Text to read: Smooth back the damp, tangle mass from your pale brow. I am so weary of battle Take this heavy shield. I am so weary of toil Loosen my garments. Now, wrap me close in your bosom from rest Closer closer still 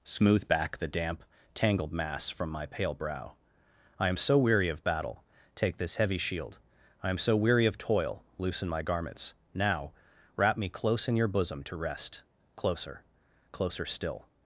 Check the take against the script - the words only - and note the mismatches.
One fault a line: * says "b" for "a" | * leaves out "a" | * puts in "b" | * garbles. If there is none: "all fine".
* says "tangled" for "tangle"
* says "my" for "your"
* says "to" for "from"